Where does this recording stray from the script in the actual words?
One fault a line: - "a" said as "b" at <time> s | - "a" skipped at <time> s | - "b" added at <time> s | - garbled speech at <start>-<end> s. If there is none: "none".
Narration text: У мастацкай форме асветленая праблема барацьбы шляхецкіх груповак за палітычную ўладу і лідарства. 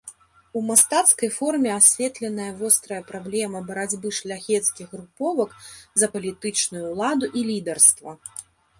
- "вострая" added at 2.6 s